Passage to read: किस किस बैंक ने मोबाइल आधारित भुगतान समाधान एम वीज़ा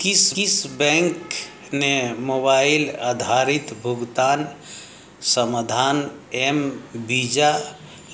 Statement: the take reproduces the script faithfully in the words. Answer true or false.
true